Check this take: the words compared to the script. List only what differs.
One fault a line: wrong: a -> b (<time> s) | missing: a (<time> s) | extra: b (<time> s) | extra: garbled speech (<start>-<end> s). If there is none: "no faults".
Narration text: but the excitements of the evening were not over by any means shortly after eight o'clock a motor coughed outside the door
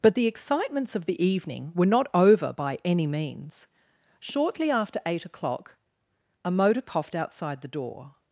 no faults